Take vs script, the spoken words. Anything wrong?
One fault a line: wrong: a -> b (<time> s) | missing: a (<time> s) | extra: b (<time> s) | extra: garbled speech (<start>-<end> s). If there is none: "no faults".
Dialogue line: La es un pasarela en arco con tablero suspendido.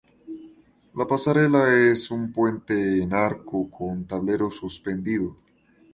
extra: pasarela (1.1 s)
wrong: pasarela -> puente (2.3 s)